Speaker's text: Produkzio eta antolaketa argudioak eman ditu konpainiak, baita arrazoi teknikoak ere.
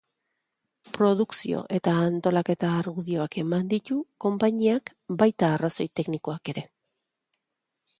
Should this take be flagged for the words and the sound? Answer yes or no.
no